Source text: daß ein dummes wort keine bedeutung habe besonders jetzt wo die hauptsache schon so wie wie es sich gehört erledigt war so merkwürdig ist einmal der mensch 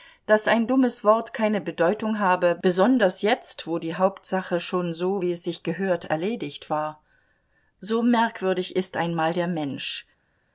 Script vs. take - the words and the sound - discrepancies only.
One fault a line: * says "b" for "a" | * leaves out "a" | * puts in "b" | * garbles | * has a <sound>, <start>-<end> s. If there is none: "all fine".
* leaves out "wie"